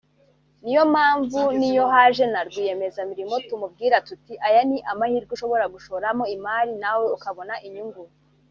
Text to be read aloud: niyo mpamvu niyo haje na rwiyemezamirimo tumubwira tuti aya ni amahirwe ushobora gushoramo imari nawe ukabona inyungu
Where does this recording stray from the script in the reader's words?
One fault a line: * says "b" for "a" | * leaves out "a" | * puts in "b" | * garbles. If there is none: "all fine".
all fine